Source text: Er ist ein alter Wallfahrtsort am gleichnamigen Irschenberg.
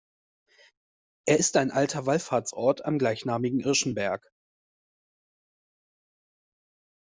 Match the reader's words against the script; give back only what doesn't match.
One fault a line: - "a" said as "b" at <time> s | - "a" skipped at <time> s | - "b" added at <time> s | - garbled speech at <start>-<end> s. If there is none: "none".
none